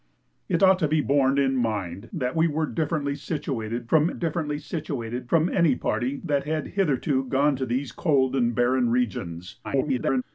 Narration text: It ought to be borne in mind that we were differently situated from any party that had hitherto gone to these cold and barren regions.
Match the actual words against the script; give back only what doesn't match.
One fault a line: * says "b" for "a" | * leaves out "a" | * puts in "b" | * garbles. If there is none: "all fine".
* puts in "differently situated from"
* garbles